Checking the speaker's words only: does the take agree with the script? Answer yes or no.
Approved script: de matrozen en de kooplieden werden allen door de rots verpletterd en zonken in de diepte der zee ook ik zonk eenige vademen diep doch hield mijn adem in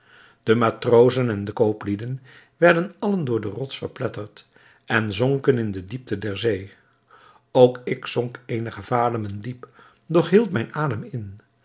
yes